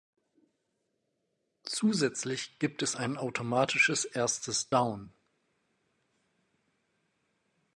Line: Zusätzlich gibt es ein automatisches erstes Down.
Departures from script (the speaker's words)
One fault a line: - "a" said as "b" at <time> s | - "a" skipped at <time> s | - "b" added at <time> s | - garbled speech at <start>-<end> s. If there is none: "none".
none